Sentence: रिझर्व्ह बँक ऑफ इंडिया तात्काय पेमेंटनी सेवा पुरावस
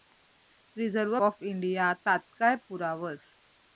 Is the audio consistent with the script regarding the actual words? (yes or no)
no